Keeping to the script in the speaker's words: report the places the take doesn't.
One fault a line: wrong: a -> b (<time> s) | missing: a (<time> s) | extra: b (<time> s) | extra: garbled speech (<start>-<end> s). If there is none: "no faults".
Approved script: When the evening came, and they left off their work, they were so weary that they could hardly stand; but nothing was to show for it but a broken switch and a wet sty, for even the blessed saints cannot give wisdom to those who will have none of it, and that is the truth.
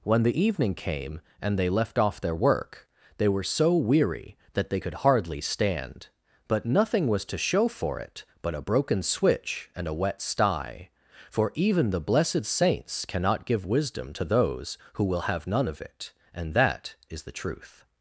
no faults